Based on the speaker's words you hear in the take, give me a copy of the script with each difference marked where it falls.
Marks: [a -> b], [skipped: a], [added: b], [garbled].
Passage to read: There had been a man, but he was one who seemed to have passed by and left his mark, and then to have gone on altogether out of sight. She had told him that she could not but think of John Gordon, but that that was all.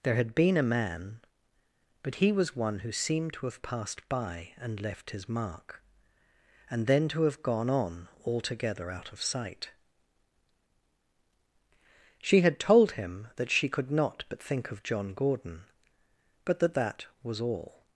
There had been a man, but he was one who seemed to have passed by and left his mark, and then to have gone on altogether out of sight. She had told him that she could not but think of John Gordon, but that that was all.